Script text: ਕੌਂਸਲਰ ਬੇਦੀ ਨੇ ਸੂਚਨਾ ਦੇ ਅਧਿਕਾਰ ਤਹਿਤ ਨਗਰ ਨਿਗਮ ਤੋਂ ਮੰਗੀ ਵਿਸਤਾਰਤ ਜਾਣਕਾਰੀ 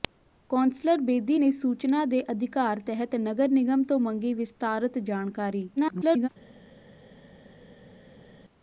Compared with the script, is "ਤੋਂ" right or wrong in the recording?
right